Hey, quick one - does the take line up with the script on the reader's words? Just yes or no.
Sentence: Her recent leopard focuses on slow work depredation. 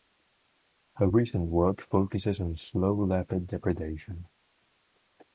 no